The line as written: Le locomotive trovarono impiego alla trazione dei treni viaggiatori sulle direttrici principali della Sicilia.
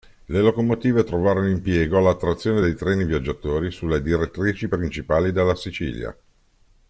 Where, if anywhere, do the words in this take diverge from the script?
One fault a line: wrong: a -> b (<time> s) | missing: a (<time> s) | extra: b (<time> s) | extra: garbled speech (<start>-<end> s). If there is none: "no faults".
no faults